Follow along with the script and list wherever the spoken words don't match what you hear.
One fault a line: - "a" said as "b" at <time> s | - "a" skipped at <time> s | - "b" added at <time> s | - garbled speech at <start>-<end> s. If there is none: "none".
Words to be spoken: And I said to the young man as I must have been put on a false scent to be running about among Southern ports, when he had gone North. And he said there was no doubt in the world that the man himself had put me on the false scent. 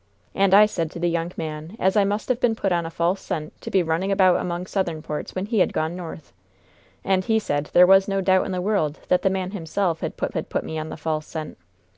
- "had put" added at 10.3 s